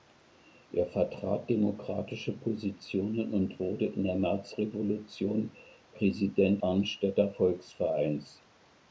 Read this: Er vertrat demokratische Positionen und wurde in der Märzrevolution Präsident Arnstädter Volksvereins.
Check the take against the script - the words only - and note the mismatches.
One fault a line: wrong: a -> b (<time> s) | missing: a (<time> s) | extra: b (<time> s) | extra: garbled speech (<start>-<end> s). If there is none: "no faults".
no faults